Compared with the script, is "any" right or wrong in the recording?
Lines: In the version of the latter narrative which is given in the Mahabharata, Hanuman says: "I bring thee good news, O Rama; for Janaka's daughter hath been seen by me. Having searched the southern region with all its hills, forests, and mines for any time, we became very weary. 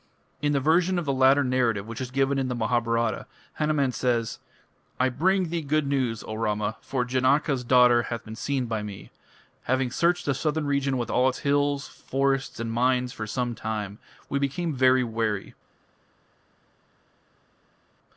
wrong